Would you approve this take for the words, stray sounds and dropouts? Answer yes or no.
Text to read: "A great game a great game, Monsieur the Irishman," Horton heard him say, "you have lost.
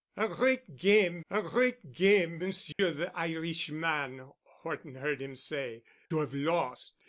no